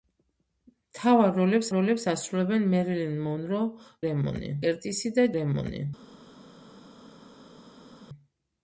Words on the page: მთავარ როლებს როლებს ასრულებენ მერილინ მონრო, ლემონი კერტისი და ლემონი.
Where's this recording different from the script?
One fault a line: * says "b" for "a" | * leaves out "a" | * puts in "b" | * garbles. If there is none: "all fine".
all fine